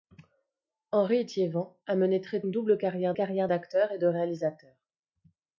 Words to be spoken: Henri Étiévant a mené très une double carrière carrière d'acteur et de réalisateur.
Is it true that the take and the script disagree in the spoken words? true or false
false